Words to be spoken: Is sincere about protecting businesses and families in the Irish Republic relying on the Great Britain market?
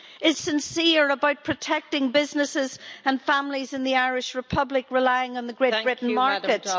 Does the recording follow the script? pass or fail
pass